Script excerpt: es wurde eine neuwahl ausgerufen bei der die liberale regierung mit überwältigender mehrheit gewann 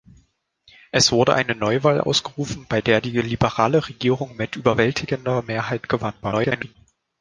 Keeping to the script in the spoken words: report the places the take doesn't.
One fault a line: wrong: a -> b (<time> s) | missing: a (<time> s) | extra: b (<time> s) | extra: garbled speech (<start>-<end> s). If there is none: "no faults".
extra: garbled speech (6.2-6.8 s)